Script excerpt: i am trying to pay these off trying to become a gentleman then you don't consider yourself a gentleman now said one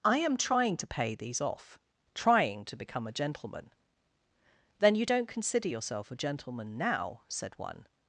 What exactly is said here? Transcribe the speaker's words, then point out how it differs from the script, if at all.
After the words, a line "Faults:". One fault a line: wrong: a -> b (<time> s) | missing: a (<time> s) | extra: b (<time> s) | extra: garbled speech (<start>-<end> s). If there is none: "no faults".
i am trying to pay these off trying to become a gentleman then you don't consider yourself a gentleman now said one
Faults:
no faults